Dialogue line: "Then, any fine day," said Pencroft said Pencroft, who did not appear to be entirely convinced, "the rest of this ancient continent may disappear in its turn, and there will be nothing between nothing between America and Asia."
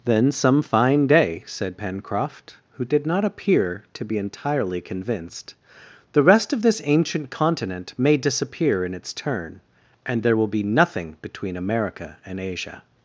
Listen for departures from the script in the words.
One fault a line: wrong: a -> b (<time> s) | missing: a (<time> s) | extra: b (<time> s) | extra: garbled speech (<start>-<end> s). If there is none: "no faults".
wrong: any -> some (0.3 s)
missing: said Pencroft (2.6 s)
missing: nothing between (11.6 s)